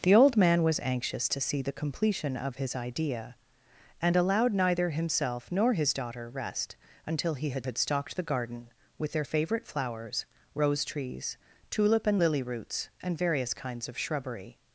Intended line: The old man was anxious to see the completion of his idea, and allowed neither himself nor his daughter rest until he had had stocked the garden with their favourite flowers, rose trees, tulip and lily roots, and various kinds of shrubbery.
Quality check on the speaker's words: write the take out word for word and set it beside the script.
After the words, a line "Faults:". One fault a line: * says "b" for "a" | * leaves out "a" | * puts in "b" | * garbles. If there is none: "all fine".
The old man was anxious to see the completion of his idea, and allowed neither himself nor his daughter rest until he had had stocked the garden with their favourite flowers, rose trees, tulip and lily roots, and various kinds of shrubbery.
Faults:
all fine